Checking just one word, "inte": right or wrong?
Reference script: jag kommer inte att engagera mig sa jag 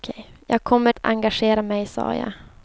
wrong